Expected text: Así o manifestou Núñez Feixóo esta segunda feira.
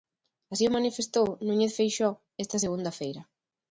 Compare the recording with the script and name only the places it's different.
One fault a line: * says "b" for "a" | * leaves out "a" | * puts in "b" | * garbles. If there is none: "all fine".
all fine